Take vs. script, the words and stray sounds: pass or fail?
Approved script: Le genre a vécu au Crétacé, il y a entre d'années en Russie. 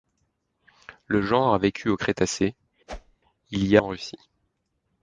fail